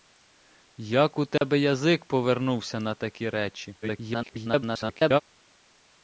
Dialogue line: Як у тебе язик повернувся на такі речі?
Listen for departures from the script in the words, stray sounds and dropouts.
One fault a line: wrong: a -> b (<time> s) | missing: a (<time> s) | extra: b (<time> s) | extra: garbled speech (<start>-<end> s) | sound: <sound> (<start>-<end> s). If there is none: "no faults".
sound: dropout (1.4-1.4 s)
extra: garbled speech (3.8-5.2 s)